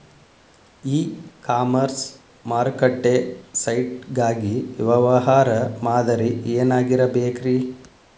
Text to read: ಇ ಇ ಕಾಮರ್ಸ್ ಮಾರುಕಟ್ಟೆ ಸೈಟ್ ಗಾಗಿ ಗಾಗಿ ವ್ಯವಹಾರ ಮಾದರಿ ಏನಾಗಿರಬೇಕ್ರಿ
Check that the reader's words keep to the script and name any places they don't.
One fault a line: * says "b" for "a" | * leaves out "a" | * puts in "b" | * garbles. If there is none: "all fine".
* leaves out "ಇ"
* leaves out "ಗಾಗಿ"